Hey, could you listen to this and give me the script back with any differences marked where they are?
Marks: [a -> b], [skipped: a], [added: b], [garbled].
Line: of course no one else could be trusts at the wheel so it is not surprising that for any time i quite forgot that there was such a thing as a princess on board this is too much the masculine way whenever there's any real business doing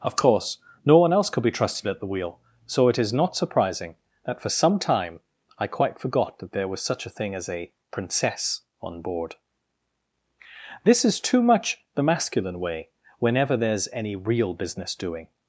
of course no one else could be [trusts -> trusted] at the wheel so it is not surprising that for [any -> some] time i quite forgot that there was such a thing as a princess on board this is too much the masculine way whenever there's any real business doing